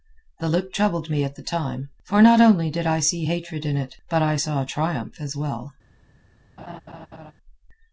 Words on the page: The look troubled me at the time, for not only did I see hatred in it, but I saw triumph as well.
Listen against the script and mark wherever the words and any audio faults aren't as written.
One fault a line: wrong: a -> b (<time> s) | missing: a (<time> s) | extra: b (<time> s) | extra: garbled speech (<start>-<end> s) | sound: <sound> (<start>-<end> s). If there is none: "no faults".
sound: laugh (6.6-7.3 s)